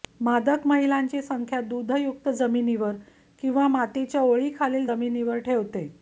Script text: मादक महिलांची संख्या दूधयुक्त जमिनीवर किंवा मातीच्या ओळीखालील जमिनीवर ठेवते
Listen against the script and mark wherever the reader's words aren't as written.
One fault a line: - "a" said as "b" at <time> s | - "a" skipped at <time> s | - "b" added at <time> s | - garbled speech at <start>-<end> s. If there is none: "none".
none